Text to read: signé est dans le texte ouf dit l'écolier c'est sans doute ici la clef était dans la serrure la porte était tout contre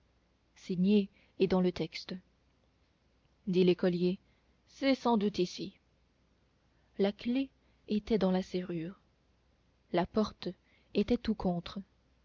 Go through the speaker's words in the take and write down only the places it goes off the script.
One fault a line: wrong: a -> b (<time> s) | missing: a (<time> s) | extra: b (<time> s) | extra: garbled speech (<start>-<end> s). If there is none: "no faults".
missing: ouf (2.1 s)